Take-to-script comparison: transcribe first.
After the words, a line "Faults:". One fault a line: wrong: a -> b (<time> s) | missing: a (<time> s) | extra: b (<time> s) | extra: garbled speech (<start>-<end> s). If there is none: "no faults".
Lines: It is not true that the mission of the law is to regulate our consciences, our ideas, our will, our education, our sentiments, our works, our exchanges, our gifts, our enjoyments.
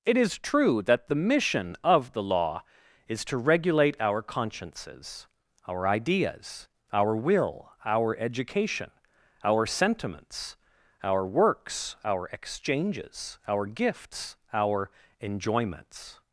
It is true that the mission of the law is to regulate our consciences, our ideas, our will, our education, our sentiments, our works, our exchanges, our gifts, our enjoyments.
Faults:
missing: not (0.4 s)